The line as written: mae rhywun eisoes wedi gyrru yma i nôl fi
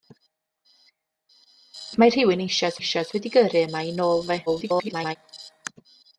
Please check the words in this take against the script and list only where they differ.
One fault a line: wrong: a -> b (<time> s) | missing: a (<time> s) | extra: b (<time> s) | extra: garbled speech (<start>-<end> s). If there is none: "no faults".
extra: eisoes (2.8 s)
extra: garbled speech (4.5-5.2 s)